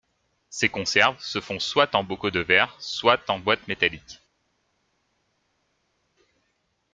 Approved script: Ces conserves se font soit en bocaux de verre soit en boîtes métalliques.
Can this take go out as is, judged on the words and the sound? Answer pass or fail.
pass